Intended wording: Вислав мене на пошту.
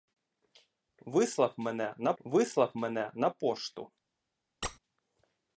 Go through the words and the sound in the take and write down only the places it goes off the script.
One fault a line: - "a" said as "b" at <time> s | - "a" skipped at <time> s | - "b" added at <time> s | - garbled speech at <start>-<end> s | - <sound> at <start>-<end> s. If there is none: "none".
- "вислав мене на" added at 2.2 s
- squeak at 4.6-4.8 s